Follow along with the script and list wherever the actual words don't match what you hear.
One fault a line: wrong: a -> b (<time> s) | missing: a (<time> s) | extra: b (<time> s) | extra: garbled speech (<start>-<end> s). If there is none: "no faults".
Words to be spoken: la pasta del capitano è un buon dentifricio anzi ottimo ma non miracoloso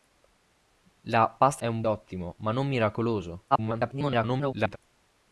missing: del capitano (1.6 s)
missing: buon dentifricio anzi (1.8 s)
extra: garbled speech (3.5-4.8 s)